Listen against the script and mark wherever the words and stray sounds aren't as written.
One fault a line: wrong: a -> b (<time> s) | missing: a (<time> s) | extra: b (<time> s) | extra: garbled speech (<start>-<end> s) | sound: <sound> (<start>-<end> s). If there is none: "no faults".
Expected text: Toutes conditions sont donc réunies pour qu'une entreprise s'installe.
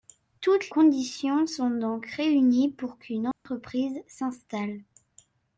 sound: dropout (3.3-3.5 s)